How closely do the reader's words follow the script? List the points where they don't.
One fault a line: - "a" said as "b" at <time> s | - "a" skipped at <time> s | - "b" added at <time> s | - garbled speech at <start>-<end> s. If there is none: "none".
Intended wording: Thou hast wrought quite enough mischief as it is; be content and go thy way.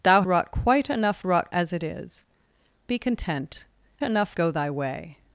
- "hast" skipped at 0.2 s
- "mischief" said as "wrought" at 1.2 s
- "and" said as "enough" at 4.0 s